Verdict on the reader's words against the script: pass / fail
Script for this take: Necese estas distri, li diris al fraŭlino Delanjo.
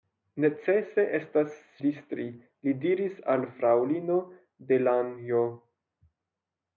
pass